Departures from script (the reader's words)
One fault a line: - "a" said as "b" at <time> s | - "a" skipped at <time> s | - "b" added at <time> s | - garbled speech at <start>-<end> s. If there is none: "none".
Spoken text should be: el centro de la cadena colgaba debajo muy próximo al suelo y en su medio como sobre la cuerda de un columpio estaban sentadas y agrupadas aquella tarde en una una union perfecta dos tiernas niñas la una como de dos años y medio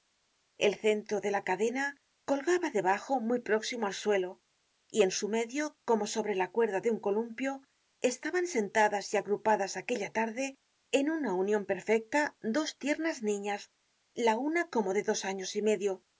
- "una" skipped at 11.3 s